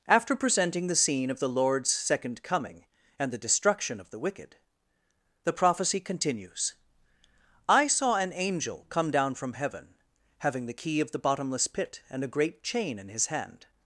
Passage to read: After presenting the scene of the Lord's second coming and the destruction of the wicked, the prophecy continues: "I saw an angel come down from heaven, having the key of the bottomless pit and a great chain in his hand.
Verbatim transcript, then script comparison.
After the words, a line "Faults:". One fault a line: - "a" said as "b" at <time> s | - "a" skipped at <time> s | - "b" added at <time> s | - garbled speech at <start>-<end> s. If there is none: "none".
After presenting the scene of the Lord's second coming and the destruction of the wicked, the prophecy continues: "I saw an angel come down from heaven, having the key of the bottomless pit and a great chain in his hand.
Faults:
none